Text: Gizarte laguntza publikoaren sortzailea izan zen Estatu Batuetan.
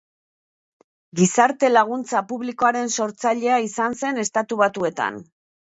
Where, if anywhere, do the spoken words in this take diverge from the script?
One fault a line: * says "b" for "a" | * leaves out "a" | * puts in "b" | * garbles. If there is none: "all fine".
all fine